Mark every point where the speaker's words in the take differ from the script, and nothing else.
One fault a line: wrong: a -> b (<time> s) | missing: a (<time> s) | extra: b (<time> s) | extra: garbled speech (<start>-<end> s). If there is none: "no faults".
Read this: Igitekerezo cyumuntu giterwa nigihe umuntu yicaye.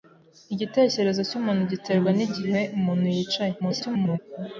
extra: garbled speech (3.6-4.2 s)